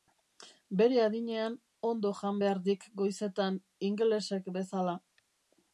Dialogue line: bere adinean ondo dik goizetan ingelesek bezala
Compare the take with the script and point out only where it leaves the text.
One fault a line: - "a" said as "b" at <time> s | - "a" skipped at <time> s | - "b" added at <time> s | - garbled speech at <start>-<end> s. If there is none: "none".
- "jan behar" added at 2.2 s